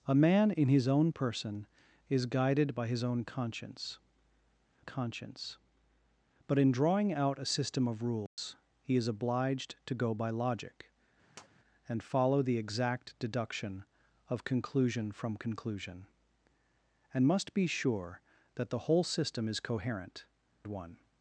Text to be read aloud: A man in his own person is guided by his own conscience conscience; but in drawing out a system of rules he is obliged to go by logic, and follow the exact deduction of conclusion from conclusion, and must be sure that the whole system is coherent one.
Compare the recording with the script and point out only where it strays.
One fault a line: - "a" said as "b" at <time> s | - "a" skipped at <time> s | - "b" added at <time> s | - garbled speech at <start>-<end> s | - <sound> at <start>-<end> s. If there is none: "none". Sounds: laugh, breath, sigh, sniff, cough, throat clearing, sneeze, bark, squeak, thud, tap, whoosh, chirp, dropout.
- dropout at 8.3-8.4 s
- tap at 11.4-11.5 s